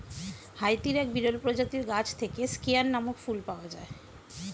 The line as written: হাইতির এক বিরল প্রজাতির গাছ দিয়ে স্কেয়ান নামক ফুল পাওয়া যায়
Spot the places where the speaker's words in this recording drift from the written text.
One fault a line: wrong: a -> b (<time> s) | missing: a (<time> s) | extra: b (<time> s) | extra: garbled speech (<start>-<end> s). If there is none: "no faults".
wrong: দিয়ে -> থেকে (2.2 s)